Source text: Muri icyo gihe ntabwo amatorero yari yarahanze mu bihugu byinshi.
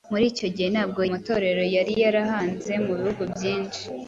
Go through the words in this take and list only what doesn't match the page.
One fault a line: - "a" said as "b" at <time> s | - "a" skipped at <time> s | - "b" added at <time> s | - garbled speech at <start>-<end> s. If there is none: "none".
none